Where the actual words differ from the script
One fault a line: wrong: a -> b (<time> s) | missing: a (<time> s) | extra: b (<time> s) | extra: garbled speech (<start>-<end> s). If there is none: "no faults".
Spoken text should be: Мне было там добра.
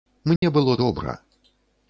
missing: там (0.8 s)